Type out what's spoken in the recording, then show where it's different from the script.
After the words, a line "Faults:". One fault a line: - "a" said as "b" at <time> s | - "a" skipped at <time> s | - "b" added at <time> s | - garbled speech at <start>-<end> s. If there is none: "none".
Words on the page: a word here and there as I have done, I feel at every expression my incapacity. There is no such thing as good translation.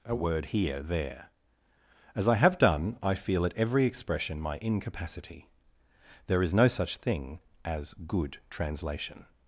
a word here there as I have done, I feel at every expression my incapacity. There is no such thing as good translation.
Faults:
- "and" skipped at 0.8 s